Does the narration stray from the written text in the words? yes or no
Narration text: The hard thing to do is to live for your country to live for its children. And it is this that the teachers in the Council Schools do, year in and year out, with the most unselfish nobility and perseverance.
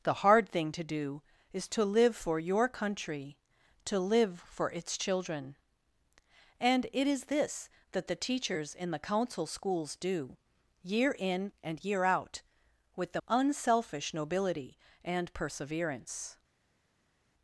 yes